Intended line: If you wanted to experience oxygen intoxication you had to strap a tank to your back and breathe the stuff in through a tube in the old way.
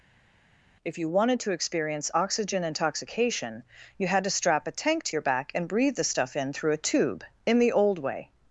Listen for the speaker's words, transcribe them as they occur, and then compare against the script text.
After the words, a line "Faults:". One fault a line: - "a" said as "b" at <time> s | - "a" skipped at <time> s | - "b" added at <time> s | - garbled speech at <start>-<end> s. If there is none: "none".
If you wanted to experience oxygen intoxication you had to strap a tank to your back and breathe the stuff in through a tube in the old way.
Faults:
none